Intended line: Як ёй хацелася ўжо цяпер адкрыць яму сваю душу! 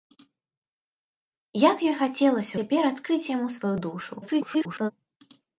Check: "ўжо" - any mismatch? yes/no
yes